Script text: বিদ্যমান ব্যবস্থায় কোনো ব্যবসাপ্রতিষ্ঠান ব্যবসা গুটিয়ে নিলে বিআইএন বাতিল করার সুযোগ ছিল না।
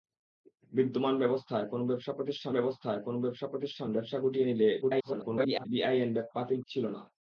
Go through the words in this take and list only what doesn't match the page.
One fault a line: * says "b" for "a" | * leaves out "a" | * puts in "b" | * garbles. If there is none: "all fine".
* puts in "ব্যবস্থায় কোনো ব্যবসাপ্রতিষ্ঠান"
* garbles
* leaves out "করার সুযোগ"